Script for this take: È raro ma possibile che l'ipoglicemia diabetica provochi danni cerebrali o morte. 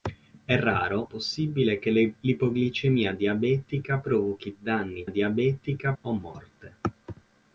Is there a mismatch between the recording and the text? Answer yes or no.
yes